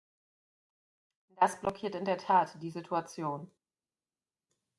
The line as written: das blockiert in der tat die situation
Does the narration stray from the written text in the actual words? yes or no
no